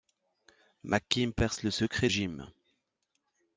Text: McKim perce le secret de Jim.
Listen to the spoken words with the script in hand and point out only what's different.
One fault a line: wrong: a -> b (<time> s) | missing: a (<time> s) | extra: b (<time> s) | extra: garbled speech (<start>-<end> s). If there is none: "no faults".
missing: de (2.1 s)